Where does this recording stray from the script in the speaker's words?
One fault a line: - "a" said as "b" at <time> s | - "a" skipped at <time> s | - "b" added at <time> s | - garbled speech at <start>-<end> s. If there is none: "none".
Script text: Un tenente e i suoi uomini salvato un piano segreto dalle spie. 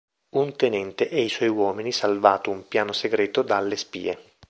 none